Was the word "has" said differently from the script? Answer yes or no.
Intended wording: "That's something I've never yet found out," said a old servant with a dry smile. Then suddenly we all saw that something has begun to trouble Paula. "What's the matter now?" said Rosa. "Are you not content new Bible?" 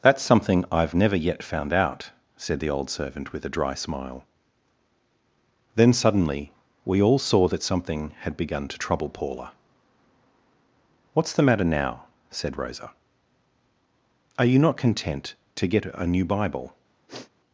yes